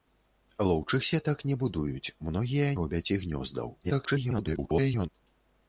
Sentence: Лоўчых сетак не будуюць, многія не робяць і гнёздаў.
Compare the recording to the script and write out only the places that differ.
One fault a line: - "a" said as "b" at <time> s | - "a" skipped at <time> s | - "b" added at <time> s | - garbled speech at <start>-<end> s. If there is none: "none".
- "не" skipped at 2.7 s
- garbled speech at 3.8-5.1 s